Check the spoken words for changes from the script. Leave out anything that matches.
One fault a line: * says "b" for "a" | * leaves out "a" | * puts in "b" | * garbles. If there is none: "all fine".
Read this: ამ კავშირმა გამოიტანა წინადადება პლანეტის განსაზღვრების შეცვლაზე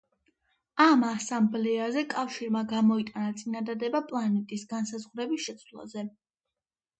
* puts in "ასამბლეაზე"